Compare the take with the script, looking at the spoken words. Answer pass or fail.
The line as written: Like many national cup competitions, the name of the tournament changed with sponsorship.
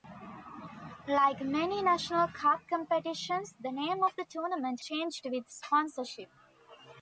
pass